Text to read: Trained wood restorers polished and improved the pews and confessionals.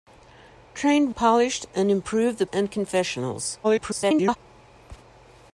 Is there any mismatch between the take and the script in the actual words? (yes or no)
yes